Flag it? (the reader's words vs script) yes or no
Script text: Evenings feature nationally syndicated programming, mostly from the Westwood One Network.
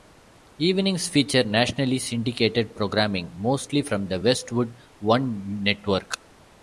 no